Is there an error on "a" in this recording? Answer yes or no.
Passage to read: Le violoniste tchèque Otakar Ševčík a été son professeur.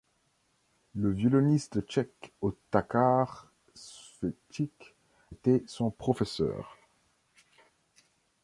yes